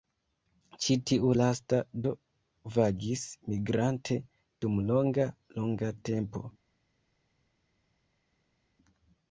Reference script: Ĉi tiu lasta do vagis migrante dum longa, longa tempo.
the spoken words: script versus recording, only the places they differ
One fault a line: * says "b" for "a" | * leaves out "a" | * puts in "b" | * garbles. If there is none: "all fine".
all fine